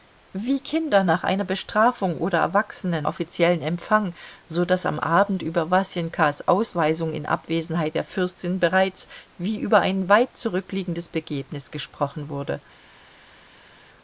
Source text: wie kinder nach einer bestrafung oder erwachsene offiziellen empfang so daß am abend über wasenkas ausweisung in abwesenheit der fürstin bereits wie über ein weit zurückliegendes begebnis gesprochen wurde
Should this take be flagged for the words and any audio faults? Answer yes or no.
no